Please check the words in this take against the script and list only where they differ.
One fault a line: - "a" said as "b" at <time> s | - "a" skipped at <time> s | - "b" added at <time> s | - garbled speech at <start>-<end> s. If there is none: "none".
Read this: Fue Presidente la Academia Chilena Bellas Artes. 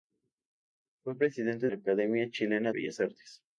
none